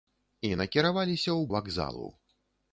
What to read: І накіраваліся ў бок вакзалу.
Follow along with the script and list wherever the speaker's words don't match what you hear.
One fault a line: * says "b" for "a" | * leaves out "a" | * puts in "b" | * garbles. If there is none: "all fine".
* leaves out "бок"